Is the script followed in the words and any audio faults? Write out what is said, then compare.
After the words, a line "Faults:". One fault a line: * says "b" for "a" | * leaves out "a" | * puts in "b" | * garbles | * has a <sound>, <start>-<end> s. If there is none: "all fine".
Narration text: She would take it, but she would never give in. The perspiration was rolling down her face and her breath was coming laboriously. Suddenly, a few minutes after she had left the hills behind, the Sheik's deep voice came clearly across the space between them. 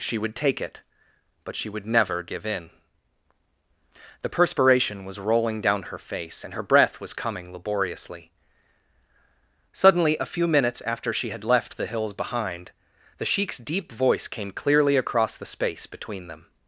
She would take it, but she would never give in. The perspiration was rolling down her face and her breath was coming laboriously. Suddenly, a few minutes after she had left the hills behind, the Sheik's deep voice came clearly across the space between them.
Faults:
all fine